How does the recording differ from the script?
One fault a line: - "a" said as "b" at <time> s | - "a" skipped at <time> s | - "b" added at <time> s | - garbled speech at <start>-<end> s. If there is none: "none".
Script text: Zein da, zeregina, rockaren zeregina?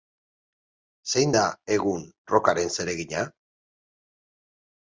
- "zeregina" said as "egun" at 1.8 s